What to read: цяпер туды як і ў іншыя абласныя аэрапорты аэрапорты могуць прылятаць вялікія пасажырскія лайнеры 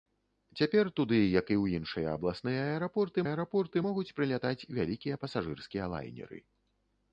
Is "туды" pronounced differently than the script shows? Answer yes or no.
no